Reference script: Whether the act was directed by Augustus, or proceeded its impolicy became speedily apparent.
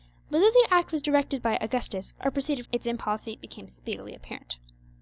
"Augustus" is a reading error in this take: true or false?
false